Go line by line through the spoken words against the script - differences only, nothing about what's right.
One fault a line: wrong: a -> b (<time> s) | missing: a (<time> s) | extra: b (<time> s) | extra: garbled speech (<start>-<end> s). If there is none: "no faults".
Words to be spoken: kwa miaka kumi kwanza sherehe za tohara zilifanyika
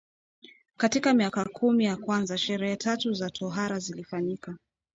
wrong: kwa -> katika (0.8 s)
extra: ya (1.9 s)
extra: tatu (2.7 s)